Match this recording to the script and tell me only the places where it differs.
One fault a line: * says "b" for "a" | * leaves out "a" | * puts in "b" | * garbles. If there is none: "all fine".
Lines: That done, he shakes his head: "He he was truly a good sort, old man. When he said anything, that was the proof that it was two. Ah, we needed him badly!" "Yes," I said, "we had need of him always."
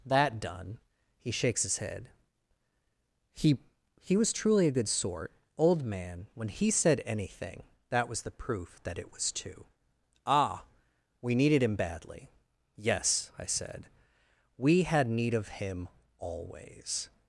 all fine